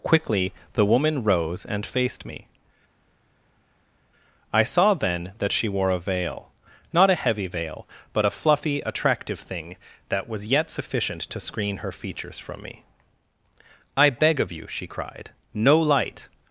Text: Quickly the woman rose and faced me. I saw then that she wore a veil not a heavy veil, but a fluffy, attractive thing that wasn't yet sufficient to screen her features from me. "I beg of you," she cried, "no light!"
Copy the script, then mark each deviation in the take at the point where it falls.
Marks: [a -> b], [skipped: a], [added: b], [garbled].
Quickly the woman rose and faced me. I saw then that she wore a veil not a heavy veil, but a fluffy, attractive thing that [wasn't -> was] yet sufficient to screen her features from me. "I beg of you," she cried, "no light!"